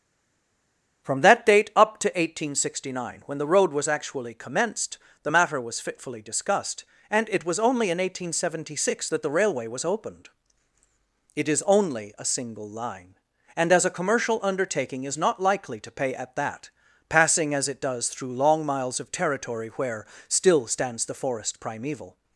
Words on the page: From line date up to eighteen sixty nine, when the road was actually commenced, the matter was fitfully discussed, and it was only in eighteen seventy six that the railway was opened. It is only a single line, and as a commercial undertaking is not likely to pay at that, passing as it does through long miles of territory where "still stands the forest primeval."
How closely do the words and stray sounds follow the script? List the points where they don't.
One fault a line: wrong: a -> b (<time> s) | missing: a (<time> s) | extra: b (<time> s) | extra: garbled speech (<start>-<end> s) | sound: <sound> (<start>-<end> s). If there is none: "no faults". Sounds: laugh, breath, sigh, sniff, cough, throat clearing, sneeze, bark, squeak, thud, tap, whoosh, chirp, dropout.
wrong: line -> that (1.2 s)